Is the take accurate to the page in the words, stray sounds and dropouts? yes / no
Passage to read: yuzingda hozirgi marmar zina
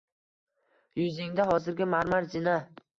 yes